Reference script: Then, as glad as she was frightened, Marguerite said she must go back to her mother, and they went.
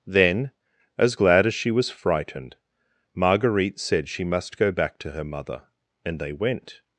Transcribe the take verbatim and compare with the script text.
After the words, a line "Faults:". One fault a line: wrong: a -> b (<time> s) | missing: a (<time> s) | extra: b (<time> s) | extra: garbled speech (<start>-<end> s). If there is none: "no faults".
Then, as glad as she was frightened, Marguerite said she must go back to her mother, and they went.
Faults:
no faults